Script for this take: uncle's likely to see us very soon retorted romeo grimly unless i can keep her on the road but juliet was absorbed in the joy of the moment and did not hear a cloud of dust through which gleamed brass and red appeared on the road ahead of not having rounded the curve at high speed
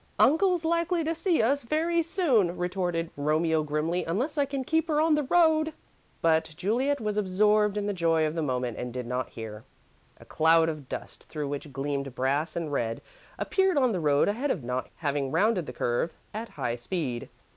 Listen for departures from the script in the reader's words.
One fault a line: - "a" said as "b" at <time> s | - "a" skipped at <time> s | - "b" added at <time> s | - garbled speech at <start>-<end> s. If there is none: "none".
none